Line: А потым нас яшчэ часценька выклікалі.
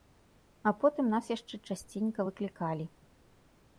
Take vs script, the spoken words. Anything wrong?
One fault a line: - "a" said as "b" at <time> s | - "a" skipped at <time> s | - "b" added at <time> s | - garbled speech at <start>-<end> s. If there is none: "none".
none